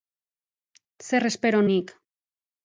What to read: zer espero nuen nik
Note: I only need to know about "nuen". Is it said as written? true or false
false